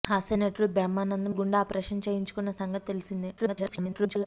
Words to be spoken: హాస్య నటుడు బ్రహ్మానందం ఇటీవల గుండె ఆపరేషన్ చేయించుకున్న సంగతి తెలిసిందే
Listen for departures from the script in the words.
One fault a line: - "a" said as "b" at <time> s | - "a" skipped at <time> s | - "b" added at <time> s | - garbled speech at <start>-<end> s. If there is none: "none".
- "ఇటీవల" skipped at 1.3 s
- garbled speech at 3.4-4.3 s